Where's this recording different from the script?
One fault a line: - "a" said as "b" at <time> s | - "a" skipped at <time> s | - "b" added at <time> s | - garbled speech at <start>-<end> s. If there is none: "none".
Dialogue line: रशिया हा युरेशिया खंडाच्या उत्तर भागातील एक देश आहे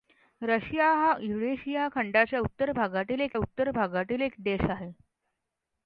- "उत्तर भागातील एक" added at 3.4 s